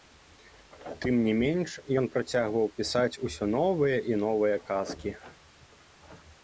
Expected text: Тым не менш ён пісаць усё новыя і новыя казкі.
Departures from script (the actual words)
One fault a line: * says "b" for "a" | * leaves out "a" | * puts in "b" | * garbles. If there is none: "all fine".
* puts in "працягваў"